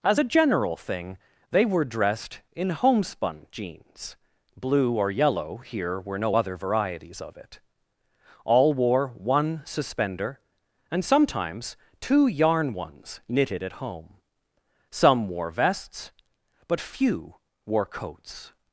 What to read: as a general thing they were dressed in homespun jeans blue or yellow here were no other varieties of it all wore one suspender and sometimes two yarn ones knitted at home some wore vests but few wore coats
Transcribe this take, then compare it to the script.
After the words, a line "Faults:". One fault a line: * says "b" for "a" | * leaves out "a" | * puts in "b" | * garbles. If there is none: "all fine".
as a general thing they were dressed in homespun jeans blue or yellow here were no other varieties of it all wore one suspender and sometimes two yarn ones knitted at home some wore vests but few wore coats
Faults:
all fine